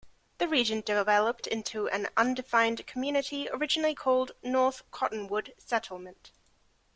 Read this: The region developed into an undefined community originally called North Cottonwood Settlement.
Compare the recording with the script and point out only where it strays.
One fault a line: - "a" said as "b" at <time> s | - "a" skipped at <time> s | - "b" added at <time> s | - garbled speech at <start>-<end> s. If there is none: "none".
none